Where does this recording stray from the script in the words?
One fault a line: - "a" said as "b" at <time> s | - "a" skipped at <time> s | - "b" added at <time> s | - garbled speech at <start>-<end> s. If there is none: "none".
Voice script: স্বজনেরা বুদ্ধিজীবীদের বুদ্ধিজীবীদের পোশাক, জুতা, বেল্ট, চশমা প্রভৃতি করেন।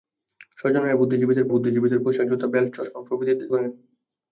none